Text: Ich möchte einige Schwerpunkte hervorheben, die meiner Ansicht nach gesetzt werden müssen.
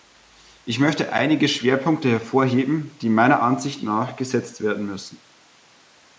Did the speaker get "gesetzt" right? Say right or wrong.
right